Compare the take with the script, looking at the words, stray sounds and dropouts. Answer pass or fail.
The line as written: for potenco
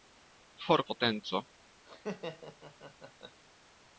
fail